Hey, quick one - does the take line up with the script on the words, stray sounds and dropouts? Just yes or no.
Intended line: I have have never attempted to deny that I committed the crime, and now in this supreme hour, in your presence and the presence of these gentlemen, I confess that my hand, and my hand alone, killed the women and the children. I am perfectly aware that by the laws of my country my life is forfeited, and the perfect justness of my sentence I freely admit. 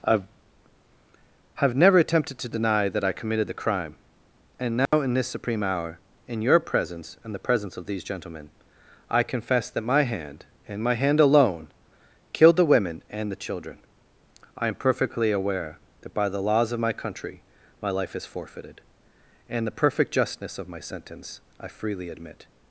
no